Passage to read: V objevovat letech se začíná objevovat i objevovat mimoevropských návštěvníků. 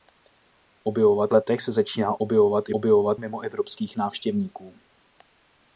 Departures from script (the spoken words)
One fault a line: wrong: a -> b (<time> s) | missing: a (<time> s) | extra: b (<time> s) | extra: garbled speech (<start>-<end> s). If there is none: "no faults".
no faults